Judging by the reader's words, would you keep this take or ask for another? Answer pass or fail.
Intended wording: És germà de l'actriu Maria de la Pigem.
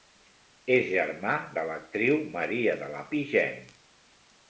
pass